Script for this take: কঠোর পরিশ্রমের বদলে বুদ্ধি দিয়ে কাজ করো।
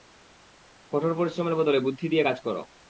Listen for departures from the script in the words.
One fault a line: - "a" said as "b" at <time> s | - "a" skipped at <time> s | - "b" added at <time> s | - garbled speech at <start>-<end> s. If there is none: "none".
none